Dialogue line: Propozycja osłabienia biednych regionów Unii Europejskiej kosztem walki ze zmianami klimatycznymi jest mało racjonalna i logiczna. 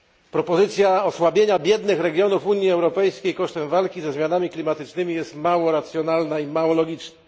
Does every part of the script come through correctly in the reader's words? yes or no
no